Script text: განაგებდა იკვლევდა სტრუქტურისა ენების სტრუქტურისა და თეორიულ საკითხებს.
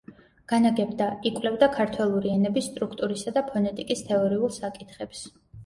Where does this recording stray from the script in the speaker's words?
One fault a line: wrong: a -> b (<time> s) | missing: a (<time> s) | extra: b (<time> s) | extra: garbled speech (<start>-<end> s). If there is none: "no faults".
wrong: სტრუქტურისა -> ქართველური (1.8 s)
extra: ფონეტიკის (3.5 s)